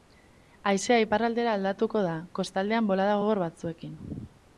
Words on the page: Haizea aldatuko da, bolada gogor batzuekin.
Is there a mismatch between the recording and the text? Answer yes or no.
yes